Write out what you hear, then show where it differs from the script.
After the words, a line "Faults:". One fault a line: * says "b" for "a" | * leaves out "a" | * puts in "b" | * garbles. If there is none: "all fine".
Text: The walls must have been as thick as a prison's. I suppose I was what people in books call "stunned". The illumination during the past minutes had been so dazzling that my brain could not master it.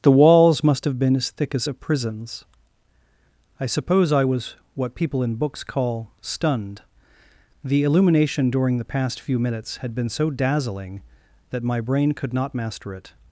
The walls must have been as thick as a prison's. I suppose I was what people in books call "stunned". The illumination during the past few minutes had been so dazzling that my brain could not master it.
Faults:
* puts in "few"